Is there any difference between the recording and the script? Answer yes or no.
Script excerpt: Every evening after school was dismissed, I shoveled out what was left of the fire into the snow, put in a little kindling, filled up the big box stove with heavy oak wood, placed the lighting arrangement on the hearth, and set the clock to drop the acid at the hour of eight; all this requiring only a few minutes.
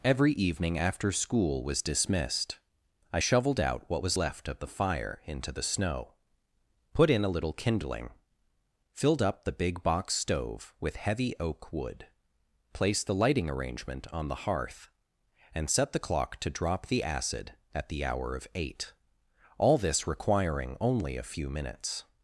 no